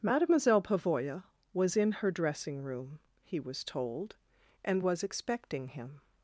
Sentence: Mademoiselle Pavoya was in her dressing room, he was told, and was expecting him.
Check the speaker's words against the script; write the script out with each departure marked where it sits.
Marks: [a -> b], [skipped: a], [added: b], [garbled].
Mademoiselle Pavoya was in her dressing room, he was told, and was expecting him.